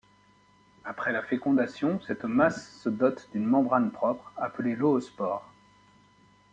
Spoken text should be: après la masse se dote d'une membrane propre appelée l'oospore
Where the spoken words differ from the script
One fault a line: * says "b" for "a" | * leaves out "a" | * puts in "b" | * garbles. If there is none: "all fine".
* puts in "fécondation cette"